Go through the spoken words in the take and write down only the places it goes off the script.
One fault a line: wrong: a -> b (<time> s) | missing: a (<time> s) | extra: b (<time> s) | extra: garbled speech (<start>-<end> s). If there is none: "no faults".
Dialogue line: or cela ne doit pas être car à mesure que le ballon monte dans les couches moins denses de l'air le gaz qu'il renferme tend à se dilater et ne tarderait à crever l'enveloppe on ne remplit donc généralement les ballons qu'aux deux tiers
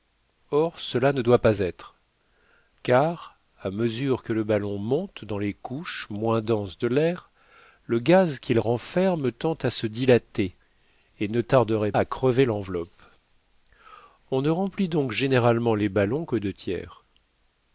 no faults